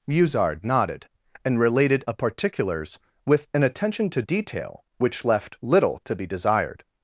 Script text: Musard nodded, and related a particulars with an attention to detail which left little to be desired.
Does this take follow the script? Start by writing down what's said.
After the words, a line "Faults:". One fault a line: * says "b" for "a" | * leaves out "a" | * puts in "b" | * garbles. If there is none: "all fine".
Musard nodded, and related a particulars with an attention to detail which left little to be desired.
Faults:
all fine